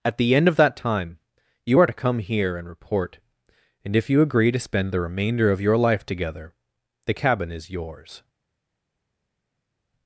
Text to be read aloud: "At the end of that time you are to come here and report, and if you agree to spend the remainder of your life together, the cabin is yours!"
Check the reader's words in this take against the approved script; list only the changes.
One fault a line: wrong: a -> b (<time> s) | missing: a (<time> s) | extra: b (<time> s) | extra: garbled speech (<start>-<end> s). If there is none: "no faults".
no faults